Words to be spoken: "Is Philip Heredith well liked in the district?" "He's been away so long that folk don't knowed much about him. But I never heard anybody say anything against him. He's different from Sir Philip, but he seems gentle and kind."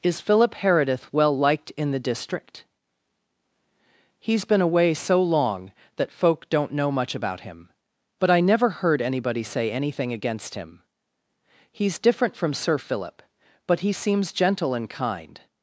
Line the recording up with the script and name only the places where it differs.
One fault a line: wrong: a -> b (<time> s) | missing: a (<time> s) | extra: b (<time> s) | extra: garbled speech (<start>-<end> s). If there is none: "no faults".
wrong: knowed -> know (6.7 s)